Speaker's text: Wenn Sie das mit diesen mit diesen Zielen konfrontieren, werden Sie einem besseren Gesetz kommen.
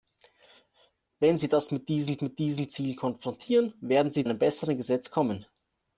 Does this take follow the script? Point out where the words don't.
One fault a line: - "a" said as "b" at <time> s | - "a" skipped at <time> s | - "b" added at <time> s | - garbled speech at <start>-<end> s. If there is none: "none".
none